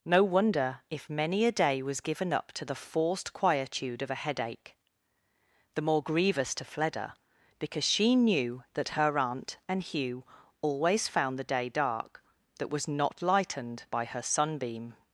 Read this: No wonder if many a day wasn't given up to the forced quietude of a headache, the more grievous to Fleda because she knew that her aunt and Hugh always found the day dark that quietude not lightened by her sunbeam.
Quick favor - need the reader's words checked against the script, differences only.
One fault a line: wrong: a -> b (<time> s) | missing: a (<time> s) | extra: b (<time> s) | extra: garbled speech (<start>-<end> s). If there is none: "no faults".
wrong: wasn't -> was (1.8 s)
wrong: quietude -> was (12.7 s)